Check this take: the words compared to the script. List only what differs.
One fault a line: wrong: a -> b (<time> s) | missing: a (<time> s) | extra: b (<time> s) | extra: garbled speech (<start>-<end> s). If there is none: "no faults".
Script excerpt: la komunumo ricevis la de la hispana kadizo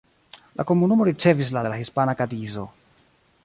no faults